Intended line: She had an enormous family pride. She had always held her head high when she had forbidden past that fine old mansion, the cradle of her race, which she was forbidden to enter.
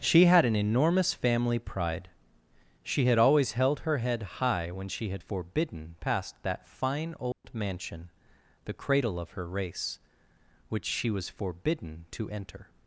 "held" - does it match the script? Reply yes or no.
yes